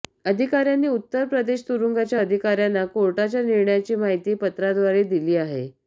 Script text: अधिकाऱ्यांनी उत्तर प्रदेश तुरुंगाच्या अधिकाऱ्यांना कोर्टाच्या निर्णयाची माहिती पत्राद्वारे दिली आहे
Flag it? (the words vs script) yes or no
no